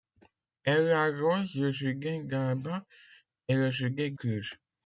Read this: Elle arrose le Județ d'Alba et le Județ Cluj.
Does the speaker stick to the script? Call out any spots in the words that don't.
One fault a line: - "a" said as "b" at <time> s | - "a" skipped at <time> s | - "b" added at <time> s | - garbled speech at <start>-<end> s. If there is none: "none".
none